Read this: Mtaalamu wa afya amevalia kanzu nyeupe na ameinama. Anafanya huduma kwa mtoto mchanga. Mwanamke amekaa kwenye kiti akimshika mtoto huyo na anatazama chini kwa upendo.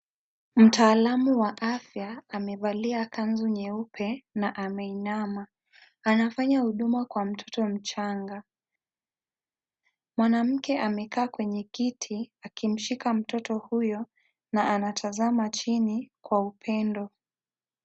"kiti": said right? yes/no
yes